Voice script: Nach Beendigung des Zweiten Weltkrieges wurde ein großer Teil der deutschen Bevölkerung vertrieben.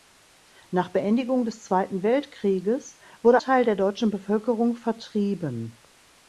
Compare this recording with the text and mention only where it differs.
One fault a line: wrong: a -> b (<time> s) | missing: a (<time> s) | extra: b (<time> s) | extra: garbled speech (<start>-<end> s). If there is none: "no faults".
missing: ein großer (3.4 s)